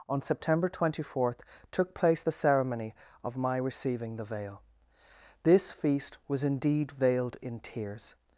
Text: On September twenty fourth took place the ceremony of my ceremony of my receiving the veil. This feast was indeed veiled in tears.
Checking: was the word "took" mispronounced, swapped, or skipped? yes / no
no